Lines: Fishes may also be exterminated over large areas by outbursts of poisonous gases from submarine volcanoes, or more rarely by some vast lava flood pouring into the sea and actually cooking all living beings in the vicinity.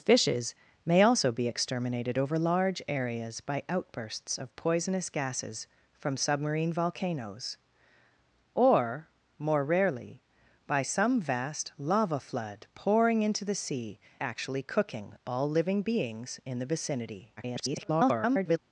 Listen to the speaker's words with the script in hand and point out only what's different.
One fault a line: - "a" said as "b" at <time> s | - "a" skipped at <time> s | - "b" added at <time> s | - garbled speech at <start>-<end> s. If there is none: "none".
- "and" skipped at 14.0 s
- garbled speech at 17.4-18.6 s